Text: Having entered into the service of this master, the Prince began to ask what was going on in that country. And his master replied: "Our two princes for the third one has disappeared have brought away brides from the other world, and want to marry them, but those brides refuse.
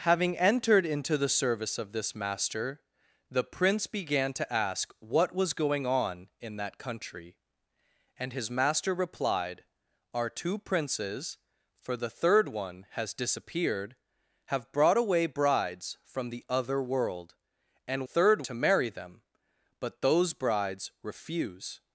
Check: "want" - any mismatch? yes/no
yes